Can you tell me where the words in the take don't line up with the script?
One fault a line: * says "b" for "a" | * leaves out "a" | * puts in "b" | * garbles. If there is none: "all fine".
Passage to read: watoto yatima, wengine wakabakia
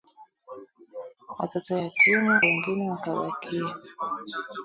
all fine